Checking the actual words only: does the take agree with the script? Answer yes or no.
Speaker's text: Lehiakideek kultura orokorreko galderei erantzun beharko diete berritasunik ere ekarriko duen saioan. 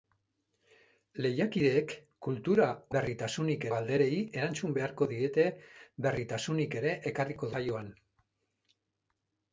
no